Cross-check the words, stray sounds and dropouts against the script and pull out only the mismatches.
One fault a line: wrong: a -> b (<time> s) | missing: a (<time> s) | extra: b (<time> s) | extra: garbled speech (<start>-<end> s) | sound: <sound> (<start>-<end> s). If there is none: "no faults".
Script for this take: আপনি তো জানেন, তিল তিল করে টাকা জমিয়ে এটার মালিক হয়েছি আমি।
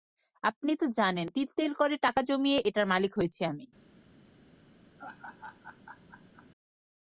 sound: laugh (5.0-6.5 s)